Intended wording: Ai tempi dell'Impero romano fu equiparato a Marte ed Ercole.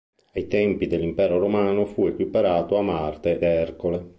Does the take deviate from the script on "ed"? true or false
true